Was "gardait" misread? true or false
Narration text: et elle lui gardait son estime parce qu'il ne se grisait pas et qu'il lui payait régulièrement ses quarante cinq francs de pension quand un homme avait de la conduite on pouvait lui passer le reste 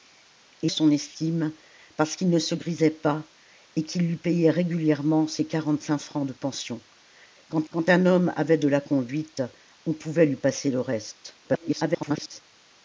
true